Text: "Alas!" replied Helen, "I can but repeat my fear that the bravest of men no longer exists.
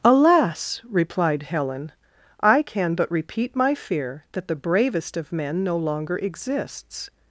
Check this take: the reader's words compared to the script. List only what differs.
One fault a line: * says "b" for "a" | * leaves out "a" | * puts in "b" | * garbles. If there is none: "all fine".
all fine